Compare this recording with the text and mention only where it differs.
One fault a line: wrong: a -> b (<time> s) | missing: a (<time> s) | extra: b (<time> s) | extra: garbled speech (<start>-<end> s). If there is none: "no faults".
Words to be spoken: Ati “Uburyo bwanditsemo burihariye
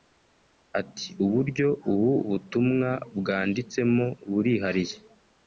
extra: ubu butumwa (1.9 s)